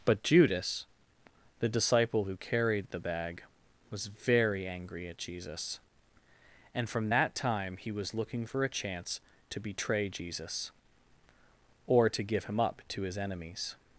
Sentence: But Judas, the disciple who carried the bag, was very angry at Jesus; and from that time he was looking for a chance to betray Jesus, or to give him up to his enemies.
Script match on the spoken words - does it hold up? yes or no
yes